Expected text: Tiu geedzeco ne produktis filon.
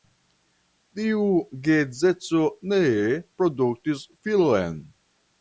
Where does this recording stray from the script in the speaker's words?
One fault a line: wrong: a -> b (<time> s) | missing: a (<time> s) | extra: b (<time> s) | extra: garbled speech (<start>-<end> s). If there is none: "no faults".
no faults